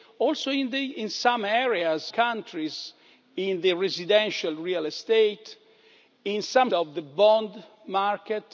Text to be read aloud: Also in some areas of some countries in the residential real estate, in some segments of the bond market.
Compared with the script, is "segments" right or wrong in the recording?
wrong